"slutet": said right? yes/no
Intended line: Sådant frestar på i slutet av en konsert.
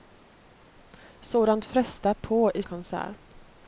no